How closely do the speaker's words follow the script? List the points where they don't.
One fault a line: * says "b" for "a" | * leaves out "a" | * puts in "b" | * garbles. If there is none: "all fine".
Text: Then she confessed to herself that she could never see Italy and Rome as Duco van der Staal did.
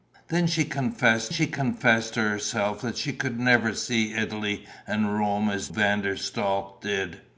* puts in "she confessed"
* leaves out "Duco"